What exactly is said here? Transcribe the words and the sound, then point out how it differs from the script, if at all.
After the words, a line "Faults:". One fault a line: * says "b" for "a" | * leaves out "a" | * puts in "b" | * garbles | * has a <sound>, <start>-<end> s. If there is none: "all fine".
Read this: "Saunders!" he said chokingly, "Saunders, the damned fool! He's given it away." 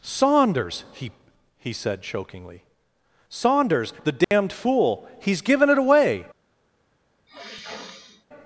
"Saunders!" he he said chokingly, "Saunders, the damned fool! He's given it away."
Faults:
* puts in "he"
* has a dropout, 4.2-4.3 s
* has a sniff, 7.3-8.3 s